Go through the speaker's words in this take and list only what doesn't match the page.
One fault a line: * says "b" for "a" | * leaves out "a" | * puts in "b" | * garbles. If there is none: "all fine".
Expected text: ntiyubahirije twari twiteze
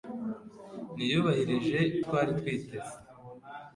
all fine